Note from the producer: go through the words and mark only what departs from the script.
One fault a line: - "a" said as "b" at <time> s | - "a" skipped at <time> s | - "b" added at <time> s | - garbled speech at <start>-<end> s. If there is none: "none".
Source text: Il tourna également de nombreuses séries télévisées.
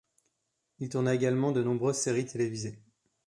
none